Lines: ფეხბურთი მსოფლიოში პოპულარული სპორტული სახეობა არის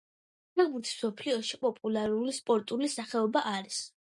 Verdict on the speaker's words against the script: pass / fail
pass